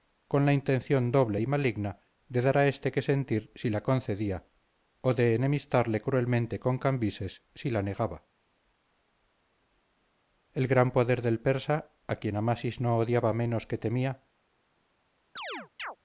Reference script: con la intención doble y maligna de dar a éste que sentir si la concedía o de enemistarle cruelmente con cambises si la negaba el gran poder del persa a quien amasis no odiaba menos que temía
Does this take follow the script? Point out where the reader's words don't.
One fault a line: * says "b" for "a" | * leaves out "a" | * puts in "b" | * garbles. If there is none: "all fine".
all fine